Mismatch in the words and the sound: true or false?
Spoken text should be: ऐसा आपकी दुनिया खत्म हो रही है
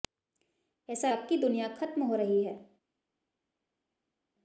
false